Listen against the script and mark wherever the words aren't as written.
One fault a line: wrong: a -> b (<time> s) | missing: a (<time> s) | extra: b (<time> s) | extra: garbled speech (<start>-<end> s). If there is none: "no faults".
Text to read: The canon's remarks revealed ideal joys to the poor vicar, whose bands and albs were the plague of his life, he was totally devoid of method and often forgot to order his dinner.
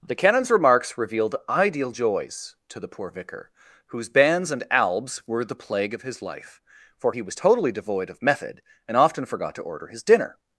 extra: for (7.0 s)